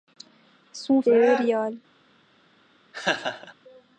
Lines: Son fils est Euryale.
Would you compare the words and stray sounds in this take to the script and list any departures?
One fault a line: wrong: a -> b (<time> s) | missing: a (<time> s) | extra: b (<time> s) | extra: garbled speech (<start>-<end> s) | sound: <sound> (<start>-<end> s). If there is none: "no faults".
missing: fils (1.0 s)
sound: laugh (2.9-3.5 s)